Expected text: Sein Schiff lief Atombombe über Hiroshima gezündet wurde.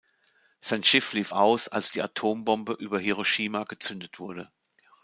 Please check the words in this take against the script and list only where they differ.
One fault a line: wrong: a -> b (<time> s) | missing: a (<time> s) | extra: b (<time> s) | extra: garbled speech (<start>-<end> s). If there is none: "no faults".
extra: aus als die (1.3 s)